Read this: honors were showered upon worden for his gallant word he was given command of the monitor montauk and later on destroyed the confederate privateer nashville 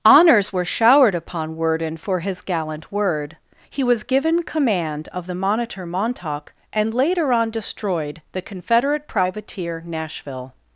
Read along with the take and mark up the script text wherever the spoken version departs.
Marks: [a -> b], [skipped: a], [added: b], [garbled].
honors were showered upon worden for his gallant word he was given command of the monitor montauk and later on destroyed the confederate privateer nashville